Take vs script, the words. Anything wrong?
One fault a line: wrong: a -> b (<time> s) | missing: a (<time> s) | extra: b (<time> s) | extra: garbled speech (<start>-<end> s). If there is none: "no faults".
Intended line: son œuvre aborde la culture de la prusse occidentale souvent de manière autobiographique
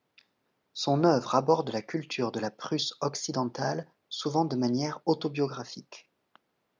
no faults